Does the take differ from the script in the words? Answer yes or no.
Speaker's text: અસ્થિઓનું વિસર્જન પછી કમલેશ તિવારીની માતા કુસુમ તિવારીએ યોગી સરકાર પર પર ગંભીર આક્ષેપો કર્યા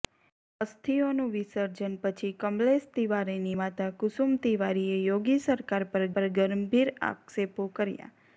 no